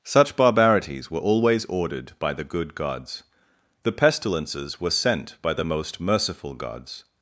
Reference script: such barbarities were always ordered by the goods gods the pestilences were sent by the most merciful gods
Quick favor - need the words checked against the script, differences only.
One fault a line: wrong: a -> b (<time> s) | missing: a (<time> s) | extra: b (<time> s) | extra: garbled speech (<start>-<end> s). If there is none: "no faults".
wrong: goods -> good (2.4 s)